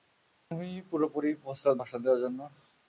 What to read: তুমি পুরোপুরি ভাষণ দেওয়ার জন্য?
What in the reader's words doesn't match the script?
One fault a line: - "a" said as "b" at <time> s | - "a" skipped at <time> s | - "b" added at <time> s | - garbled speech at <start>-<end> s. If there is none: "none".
- "প্রস্তুত" added at 1.4 s